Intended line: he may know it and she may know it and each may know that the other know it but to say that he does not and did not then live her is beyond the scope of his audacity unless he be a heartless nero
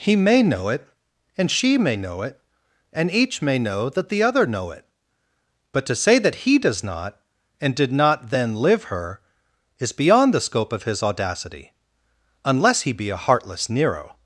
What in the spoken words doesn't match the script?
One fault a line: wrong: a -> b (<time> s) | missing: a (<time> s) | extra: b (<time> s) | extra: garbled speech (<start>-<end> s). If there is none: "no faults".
no faults